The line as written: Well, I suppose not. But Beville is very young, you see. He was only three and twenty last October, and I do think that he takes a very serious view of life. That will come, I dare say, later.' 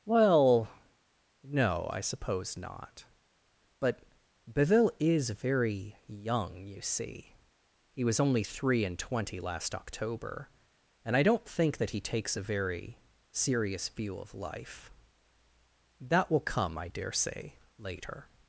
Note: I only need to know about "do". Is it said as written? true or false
false